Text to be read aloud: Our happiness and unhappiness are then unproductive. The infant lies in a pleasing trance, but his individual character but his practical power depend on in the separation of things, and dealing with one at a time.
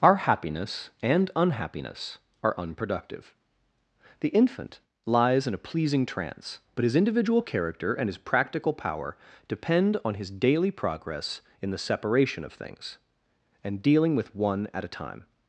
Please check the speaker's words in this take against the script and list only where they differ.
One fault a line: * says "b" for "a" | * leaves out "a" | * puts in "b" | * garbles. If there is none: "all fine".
* leaves out "then"
* says "and" for "but"
* puts in "his daily progress"